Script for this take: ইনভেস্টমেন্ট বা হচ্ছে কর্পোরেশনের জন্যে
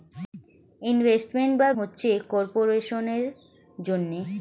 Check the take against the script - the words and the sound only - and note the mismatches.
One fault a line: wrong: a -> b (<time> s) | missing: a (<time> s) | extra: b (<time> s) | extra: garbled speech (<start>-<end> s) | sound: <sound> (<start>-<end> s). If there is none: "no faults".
no faults